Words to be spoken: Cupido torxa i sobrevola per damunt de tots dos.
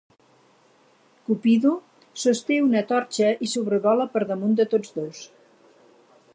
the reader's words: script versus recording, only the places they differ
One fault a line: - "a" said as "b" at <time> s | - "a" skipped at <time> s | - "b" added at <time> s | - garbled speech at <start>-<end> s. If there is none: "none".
- "sosté una" added at 2.2 s